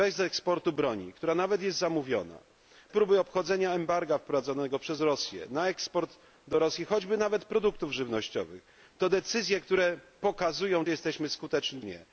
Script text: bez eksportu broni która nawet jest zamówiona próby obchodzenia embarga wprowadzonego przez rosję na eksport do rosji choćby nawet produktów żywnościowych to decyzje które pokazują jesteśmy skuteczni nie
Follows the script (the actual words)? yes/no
yes